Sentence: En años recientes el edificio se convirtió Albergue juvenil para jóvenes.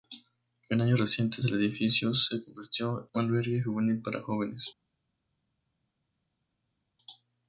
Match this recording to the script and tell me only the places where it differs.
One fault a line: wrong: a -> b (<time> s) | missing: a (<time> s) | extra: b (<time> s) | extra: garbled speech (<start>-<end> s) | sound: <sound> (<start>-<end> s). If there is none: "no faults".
no faults